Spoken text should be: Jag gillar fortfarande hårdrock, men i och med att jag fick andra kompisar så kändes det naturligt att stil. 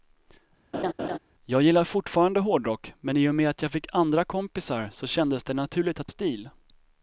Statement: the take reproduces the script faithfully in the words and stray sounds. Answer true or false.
false